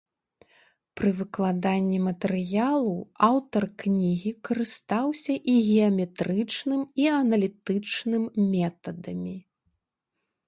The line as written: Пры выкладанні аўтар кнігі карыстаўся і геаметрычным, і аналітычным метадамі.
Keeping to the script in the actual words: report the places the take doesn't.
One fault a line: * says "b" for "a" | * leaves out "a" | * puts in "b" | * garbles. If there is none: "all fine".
* puts in "матэрыялу"